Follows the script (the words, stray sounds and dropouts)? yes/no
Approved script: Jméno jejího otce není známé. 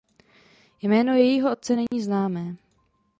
no